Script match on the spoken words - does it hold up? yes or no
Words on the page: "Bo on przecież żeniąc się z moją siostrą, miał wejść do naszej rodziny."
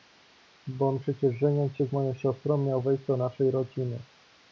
yes